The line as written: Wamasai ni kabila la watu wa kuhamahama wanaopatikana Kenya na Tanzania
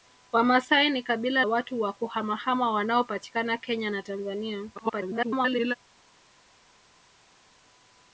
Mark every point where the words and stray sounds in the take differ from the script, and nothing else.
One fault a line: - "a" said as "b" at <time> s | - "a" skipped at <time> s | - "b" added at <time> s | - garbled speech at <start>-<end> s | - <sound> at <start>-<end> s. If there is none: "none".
- "la" skipped at 1.4 s
- garbled speech at 4.7-5.7 s